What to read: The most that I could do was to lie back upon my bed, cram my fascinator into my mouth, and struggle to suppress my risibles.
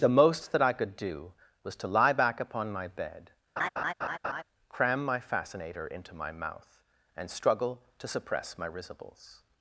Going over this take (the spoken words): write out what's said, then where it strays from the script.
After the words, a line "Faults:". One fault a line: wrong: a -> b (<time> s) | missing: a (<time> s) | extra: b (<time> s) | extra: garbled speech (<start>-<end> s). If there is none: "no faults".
The most that I could do was to lie back upon my bed, cram my fascinator into my mouth, and struggle to suppress my risibles.
Faults:
no faults